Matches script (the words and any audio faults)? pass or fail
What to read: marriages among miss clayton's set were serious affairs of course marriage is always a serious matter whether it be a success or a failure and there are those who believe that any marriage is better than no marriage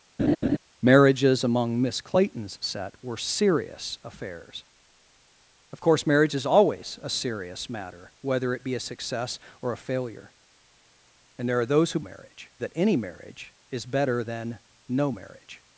fail